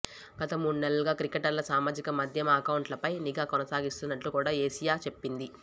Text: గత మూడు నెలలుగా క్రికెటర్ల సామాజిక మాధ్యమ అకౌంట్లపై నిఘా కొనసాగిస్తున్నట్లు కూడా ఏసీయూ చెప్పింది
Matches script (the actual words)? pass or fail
pass